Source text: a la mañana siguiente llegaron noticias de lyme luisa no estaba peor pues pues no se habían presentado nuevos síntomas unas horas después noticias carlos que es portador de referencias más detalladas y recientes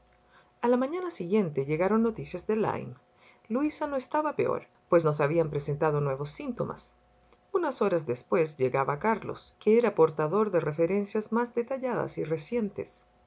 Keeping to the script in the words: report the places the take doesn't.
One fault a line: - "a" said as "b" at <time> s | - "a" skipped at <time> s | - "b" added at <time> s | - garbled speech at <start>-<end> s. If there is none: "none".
- "pues" skipped at 5.0 s
- "noticias" said as "llegaba" at 8.6 s
- "es" said as "era" at 9.8 s